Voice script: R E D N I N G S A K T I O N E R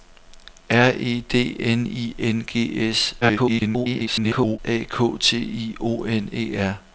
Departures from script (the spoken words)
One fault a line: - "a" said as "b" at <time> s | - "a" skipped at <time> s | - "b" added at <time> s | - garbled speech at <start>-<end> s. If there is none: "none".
- garbled speech at 3.2-4.6 s